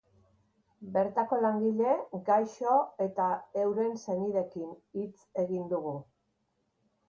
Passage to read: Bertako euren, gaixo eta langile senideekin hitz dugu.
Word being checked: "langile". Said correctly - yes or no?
no